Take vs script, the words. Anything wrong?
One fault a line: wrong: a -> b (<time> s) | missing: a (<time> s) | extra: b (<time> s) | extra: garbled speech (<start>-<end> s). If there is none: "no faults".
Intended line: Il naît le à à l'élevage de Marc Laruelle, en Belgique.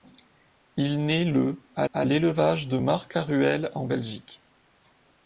no faults